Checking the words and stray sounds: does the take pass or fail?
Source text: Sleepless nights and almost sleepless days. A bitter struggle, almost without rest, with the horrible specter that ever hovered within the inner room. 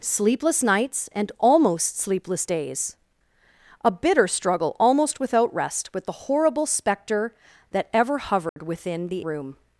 fail